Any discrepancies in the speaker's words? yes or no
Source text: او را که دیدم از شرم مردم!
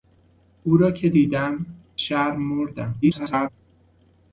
yes